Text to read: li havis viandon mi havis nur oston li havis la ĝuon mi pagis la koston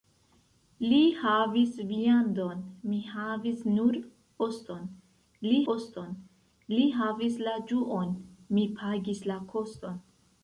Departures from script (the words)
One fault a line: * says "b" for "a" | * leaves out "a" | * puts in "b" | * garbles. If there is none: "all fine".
* puts in "oston li"